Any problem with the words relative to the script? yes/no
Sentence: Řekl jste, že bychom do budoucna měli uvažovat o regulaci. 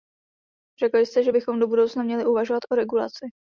no